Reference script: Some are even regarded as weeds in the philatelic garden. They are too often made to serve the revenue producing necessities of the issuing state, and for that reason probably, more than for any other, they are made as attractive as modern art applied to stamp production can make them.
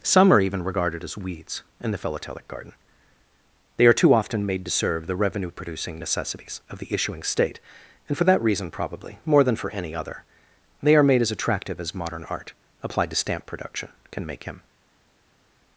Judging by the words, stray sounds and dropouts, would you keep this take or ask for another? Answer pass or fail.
fail